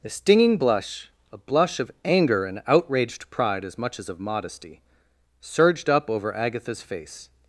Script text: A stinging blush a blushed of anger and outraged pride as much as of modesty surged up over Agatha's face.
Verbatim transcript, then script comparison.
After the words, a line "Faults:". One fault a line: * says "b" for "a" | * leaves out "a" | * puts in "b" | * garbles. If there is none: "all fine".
A stinging blush a blush of anger and outraged pride as much as of modesty surged up over Agatha's face.
Faults:
* says "blush" for "blushed"